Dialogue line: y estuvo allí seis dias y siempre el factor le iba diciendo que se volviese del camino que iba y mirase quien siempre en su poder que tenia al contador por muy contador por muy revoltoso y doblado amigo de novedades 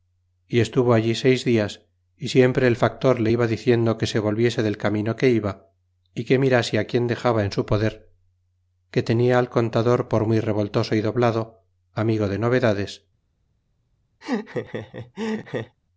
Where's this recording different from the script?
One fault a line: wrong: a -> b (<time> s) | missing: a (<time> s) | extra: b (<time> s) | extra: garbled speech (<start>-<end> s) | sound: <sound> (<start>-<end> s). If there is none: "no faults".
extra: que (6.2 s)
wrong: siempre -> dexaba (7.1 s)
missing: contador por muy (10.4 s)
sound: laugh (14.2-15.8 s)